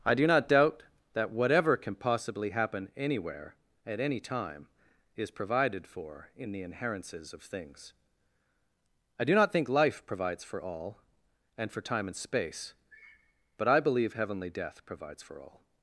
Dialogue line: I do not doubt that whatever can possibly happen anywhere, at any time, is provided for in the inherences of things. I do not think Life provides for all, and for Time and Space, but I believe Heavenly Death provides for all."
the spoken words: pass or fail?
pass